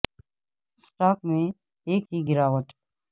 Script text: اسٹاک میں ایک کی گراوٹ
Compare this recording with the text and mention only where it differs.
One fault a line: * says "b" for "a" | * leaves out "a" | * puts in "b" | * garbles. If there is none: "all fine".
all fine